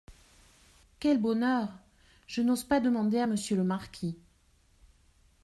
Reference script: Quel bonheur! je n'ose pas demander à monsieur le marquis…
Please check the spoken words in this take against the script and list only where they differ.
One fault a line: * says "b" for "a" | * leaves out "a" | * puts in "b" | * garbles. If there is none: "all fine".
all fine